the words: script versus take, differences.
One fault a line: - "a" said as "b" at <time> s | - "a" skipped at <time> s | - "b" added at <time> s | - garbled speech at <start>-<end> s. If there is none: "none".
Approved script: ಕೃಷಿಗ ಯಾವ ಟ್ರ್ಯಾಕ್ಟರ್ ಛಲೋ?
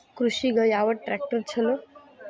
none